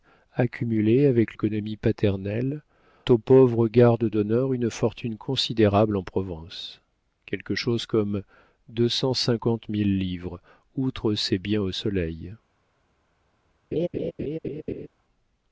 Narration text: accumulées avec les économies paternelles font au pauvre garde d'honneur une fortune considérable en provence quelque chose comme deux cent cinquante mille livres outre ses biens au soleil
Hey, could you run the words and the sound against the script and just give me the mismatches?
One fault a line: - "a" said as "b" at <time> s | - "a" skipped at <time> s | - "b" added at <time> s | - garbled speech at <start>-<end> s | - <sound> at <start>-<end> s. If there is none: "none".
- "les" skipped at 1.4 s
- "font" skipped at 2.6 s
- laugh at 13.7-14.9 s